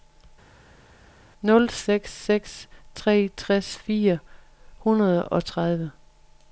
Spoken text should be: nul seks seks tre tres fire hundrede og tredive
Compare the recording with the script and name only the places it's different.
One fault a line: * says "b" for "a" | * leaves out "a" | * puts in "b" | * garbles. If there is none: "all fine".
all fine